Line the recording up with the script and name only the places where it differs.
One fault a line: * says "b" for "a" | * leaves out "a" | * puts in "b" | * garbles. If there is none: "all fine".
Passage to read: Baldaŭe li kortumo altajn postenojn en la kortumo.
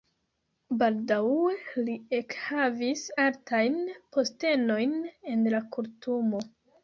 * says "ekhavis" for "kortumo"